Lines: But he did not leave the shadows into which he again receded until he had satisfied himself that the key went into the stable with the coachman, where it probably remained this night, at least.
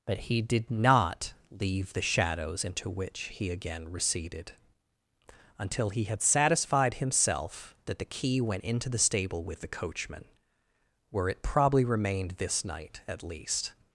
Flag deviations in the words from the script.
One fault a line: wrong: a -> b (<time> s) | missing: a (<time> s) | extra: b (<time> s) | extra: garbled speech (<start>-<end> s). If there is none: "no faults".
no faults